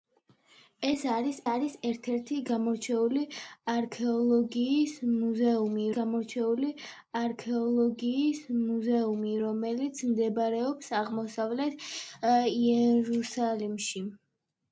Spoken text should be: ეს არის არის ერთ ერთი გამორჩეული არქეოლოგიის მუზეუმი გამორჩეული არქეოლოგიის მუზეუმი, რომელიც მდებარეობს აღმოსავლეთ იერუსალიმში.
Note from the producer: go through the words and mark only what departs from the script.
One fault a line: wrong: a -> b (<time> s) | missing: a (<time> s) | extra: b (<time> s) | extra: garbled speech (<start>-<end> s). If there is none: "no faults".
no faults